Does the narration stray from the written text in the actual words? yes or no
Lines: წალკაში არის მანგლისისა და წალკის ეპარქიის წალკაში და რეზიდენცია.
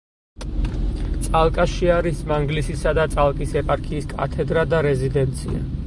yes